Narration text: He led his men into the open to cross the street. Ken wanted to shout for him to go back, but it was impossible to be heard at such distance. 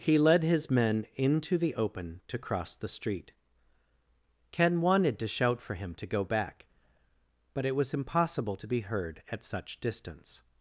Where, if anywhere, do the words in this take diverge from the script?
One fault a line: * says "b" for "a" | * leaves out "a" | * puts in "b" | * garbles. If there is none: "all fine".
all fine